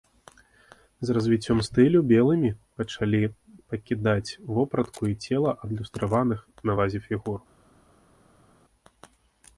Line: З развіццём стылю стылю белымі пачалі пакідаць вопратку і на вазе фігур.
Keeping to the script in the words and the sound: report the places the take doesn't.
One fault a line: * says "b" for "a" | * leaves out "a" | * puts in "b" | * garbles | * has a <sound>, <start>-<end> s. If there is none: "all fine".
* leaves out "стылю"
* puts in "цела адлюстраваных"